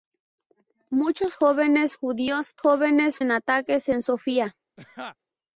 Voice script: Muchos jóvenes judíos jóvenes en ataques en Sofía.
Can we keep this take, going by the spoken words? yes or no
yes